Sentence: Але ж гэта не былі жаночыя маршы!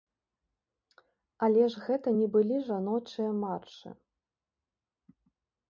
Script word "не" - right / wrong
right